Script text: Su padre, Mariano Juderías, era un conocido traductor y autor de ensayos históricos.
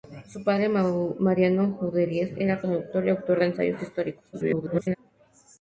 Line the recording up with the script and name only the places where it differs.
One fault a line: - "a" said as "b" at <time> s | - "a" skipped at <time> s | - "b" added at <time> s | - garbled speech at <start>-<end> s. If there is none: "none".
- "un conocido" skipped at 2.6 s
- garbled speech at 4.3-5.0 s